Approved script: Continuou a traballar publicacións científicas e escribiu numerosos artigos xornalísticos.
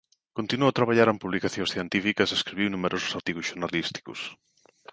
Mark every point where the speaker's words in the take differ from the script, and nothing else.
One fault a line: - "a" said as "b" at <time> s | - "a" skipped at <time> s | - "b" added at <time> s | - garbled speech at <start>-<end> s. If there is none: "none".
- "en" added at 1.1 s